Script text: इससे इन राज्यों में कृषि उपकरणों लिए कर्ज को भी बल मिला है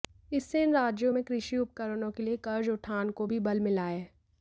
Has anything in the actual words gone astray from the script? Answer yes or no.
yes